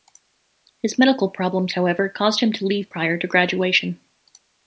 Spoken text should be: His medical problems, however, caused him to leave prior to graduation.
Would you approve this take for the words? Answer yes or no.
yes